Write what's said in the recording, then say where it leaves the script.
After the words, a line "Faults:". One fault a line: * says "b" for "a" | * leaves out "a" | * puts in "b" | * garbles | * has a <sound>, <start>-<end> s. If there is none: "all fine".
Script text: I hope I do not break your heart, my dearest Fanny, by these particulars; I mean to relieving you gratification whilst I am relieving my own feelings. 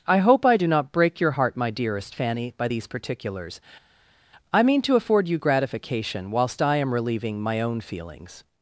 I hope I do not break your heart, my dearest Fanny, by these particulars; I mean to afford you gratification whilst I am relieving my own feelings.
Faults:
* says "afford" for "relieving"